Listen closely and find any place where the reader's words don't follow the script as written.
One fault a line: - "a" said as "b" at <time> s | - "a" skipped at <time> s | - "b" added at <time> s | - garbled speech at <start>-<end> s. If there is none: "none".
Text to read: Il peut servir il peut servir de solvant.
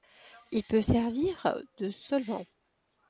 - "il peut servir" skipped at 1.6 s